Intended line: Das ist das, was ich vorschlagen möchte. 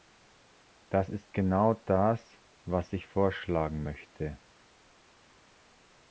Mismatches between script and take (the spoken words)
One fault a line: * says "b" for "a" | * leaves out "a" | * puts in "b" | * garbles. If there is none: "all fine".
* puts in "genau"